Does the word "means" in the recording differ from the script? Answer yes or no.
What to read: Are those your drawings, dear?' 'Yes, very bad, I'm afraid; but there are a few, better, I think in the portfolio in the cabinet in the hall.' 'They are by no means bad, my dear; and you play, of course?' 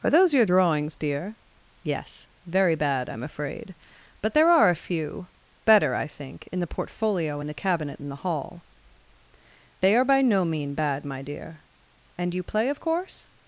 yes